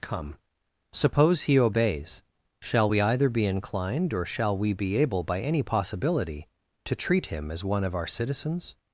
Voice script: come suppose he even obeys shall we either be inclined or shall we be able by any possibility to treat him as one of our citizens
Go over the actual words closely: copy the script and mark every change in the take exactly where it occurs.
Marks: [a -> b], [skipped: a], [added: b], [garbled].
come suppose he [skipped: even] obeys shall we either be inclined or shall we be able by any possibility to treat him as one of our citizens